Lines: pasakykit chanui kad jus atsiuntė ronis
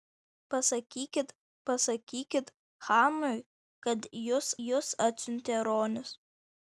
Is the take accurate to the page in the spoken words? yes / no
no